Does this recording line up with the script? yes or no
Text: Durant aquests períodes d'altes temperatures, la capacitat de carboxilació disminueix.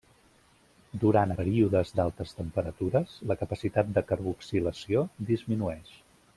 no